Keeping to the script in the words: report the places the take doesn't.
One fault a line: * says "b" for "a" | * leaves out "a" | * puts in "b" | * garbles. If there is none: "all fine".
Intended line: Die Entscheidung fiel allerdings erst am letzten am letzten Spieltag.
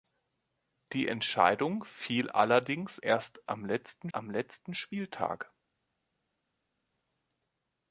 all fine